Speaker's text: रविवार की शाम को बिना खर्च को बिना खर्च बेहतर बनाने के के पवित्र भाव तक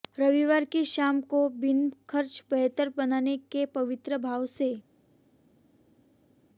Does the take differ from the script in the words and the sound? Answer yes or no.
yes